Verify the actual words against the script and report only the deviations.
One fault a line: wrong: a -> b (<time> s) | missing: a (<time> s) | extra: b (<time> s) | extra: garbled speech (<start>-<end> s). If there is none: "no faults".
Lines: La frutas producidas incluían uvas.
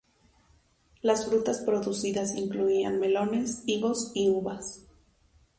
wrong: La -> Las (1.0 s)
extra: melones higos y (3.0 s)